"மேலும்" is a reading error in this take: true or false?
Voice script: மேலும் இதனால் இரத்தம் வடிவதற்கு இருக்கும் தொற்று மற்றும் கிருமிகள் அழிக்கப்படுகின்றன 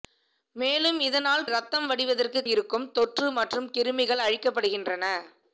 false